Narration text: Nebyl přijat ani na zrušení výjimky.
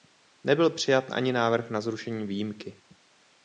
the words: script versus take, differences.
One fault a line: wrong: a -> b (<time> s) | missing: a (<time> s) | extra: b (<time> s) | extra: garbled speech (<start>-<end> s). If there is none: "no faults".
extra: návrh (1.3 s)